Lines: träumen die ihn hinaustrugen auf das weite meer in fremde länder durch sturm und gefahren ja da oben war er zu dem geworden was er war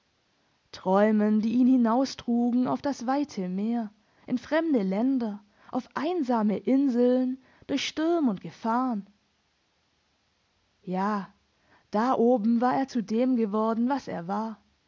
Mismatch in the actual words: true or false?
true